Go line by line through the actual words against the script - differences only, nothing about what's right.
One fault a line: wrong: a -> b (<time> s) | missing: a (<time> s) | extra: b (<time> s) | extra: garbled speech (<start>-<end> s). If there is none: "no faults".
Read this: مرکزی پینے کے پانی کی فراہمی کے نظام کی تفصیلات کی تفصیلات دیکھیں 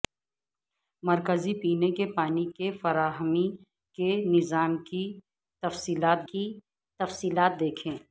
no faults